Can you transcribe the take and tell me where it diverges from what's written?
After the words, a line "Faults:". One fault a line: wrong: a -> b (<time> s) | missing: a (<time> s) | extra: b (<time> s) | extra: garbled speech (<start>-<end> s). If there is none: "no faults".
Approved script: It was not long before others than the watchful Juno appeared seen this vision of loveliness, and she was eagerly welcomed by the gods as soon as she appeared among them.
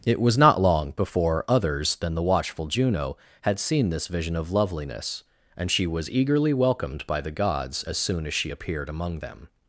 It was not long before others than the watchful Juno had seen this vision of loveliness, and she was eagerly welcomed by the gods as soon as she appeared among them.
Faults:
wrong: appeared -> had (3.4 s)